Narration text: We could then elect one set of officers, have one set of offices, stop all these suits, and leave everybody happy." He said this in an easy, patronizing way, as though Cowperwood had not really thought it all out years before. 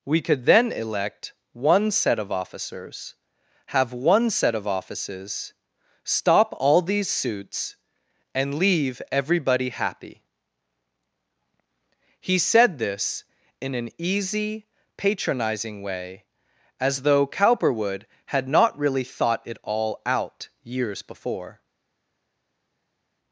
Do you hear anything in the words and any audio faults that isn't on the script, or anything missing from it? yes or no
no